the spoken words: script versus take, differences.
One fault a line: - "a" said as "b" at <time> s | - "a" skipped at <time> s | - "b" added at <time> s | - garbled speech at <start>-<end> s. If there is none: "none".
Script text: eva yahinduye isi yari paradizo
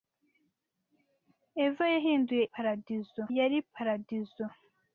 - "isi" said as "paradizo" at 2.5 s